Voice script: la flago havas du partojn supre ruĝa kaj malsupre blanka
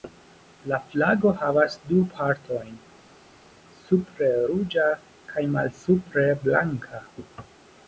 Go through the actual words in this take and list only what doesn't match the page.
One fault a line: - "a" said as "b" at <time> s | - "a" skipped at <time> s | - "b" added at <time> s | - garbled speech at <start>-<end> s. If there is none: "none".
none